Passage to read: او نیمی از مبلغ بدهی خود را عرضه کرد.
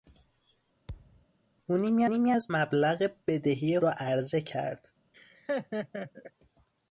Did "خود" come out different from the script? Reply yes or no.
yes